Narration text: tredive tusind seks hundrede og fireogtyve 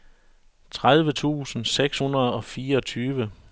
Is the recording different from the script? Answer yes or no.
no